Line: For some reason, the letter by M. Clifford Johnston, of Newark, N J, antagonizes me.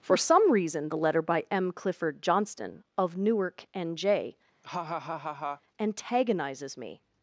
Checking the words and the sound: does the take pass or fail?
fail